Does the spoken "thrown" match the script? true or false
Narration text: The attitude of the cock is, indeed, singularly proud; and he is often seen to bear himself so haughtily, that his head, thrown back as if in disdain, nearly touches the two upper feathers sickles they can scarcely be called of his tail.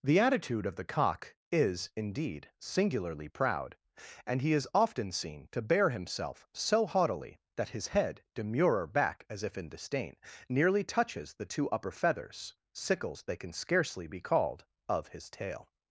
false